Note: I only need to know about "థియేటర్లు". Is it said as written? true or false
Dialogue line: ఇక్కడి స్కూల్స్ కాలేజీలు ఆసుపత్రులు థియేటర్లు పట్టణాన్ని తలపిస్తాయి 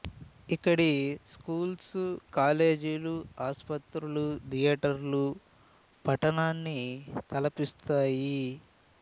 true